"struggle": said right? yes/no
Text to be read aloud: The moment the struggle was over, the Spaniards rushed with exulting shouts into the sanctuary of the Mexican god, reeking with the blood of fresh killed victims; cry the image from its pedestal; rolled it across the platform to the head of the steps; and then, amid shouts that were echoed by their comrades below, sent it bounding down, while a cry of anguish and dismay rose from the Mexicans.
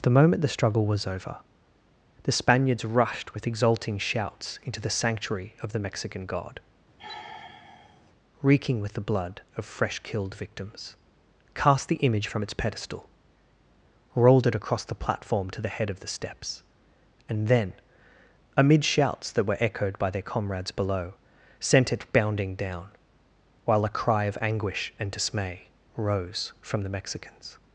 yes